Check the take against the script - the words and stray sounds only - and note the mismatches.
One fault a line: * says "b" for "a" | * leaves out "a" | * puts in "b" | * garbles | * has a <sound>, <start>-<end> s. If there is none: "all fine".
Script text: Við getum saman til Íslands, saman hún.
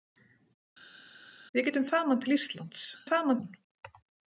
all fine